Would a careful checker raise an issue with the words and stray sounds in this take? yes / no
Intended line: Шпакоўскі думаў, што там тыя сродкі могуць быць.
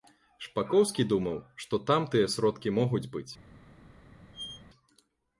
yes